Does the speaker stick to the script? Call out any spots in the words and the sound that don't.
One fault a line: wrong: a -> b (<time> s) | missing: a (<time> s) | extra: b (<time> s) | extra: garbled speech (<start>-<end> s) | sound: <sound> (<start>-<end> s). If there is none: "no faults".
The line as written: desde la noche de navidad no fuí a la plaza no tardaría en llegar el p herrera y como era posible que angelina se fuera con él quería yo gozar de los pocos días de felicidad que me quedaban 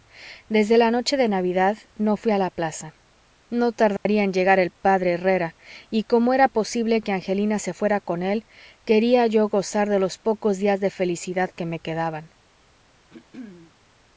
sound: dropout (4.0-4.1 s)
sound: throat clearing (13.1-13.7 s)